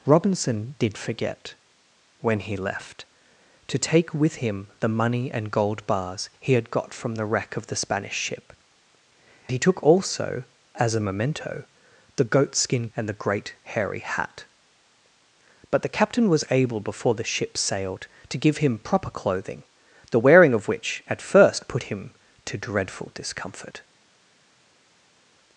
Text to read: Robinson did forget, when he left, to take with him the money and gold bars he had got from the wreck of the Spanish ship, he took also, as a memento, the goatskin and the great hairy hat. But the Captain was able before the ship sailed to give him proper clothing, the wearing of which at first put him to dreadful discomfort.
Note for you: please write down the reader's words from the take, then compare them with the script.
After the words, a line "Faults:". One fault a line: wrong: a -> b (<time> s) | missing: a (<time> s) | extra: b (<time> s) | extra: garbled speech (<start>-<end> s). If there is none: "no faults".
Robinson did forget, when he left, to take with him the money and gold bars he had got from the wreck of the Spanish ship, he took also, as a memento, the goatskin and the great hairy hat. But the Captain was able before the ship sailed to give him proper clothing, the wearing of which at first put him to dreadful discomfort.
Faults:
no faults